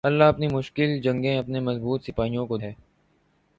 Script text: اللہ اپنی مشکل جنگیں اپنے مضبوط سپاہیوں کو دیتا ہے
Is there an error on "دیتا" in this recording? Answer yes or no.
yes